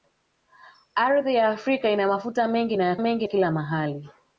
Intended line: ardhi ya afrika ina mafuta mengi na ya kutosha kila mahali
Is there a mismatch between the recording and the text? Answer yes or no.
yes